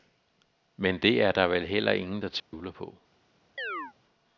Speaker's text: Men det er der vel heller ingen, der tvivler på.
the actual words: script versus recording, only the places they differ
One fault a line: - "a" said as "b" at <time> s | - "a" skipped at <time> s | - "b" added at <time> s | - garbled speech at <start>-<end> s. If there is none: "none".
none